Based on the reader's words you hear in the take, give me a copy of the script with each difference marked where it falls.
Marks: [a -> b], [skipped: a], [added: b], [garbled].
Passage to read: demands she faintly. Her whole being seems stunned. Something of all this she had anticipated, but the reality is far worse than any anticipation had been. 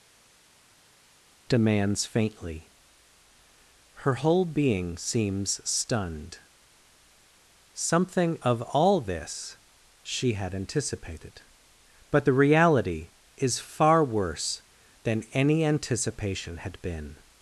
demands [skipped: she] faintly. Her whole being seems stunned. Something of all this she had anticipated, but the reality is far worse than any anticipation had been.